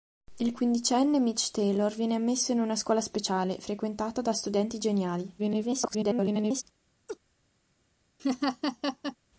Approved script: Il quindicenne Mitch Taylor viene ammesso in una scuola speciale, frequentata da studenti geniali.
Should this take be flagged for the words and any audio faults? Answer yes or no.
yes